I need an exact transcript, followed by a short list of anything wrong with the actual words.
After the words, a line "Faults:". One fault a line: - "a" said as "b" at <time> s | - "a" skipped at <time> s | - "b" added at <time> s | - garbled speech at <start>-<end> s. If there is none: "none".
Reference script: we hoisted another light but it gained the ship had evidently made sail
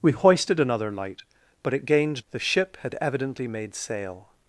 we hoisted another light but it gained the ship had evidently made sail
Faults:
none